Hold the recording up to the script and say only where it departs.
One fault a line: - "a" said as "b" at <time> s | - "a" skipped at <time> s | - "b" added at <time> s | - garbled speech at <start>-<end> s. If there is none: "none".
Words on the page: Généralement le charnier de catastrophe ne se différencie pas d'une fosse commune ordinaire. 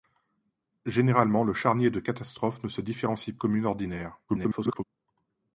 - "pas d'une fosse" skipped at 3.4 s
- garbled speech at 4.3-4.8 s